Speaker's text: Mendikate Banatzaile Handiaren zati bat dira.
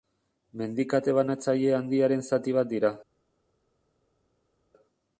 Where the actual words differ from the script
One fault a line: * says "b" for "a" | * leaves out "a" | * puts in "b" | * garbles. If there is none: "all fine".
all fine